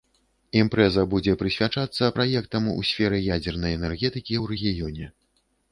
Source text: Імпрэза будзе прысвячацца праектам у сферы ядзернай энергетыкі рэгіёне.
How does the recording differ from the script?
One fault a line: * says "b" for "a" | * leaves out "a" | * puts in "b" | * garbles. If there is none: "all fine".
* puts in "ў"